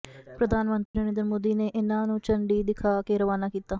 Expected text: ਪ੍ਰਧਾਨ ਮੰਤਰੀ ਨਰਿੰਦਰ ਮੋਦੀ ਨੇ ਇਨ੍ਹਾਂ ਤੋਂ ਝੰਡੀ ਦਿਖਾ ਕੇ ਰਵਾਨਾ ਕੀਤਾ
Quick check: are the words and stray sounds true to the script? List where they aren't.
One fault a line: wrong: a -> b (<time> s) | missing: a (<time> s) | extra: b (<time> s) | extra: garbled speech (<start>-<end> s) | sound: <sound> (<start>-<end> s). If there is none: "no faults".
sound: dropout (0.9-0.9 s)
wrong: ਤੋਂ -> ਨੂੰ (2.1 s)